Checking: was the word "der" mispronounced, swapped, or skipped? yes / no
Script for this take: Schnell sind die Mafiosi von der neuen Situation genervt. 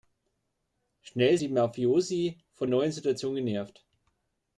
yes